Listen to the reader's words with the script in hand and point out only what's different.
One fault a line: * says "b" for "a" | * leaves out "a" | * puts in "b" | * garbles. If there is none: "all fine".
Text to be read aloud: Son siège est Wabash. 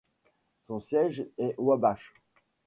all fine